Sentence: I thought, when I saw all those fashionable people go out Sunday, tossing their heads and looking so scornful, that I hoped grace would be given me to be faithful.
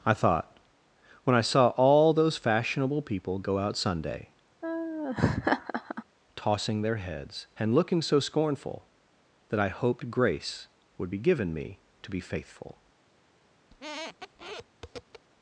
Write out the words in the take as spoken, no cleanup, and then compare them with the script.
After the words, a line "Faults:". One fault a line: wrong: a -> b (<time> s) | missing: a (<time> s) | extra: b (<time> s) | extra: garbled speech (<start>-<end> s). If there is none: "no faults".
I thought, when I saw all those fashionable people go out Sunday, tossing their heads and looking so scornful, that I hoped grace would be given me to be faithful.
Faults:
no faults